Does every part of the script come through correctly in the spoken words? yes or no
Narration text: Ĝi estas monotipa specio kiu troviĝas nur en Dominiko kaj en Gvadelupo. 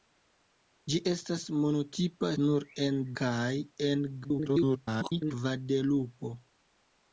no